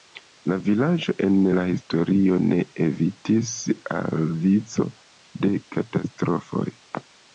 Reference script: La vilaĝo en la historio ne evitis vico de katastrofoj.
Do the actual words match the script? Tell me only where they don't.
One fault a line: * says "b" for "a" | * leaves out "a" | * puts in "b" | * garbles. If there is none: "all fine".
* puts in "al"